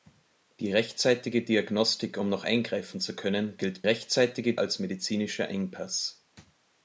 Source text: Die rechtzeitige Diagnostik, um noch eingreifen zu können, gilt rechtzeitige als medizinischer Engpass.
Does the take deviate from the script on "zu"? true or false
false